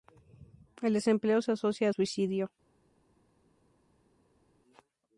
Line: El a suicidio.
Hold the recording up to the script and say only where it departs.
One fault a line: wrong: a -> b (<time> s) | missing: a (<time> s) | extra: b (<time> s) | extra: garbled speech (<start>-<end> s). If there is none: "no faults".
extra: desempleo se asocia (0.9 s)